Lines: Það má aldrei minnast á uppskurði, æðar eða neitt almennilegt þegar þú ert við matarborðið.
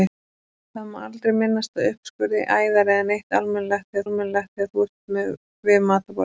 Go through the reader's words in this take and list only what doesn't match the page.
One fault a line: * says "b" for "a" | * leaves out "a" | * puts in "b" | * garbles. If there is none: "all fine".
* puts in "almennilegt þegar"